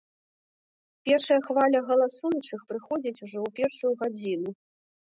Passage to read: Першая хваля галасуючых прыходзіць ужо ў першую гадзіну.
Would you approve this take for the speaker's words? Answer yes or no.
yes